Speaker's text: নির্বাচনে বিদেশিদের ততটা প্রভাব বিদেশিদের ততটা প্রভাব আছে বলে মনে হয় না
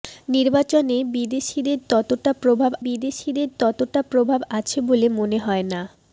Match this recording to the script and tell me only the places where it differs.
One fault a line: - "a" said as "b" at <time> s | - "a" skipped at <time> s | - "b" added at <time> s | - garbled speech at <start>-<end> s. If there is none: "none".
none